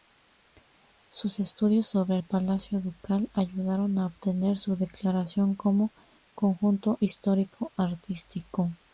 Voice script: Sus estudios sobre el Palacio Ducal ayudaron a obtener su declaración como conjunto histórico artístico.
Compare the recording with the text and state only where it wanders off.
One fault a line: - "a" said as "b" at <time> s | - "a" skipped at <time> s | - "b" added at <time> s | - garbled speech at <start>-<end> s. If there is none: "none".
none